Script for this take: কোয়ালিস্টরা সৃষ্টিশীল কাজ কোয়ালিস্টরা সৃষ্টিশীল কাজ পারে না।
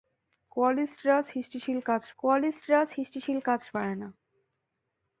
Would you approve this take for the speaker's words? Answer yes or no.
yes